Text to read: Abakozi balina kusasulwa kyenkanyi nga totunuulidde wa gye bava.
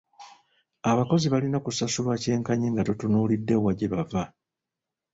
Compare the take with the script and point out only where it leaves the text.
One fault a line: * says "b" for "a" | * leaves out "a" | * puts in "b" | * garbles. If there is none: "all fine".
all fine